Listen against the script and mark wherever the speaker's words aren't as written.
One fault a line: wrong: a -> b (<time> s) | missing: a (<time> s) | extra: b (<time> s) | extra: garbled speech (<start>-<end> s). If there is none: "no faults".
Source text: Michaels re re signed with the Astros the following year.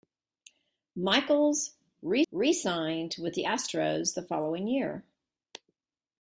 no faults